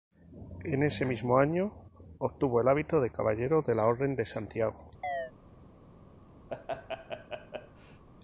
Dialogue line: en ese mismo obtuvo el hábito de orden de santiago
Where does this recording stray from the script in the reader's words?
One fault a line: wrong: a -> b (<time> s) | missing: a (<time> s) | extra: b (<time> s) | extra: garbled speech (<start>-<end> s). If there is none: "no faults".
extra: año (1.4 s)
extra: caballero de la (3.1 s)